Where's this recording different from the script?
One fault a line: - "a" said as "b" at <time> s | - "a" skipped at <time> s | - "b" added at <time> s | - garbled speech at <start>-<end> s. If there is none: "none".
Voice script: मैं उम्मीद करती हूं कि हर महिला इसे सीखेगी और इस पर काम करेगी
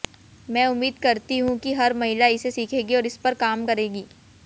none